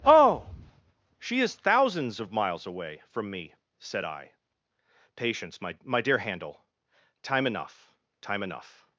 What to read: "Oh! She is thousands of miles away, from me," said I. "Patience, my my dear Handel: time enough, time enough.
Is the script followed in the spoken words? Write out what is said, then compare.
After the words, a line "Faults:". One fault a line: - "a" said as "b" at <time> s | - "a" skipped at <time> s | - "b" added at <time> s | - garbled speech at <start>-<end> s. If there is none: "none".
"Oh! She is thousands of miles away, from me," said I. "Patience, my my dear Handel: time enough, time enough.
Faults:
none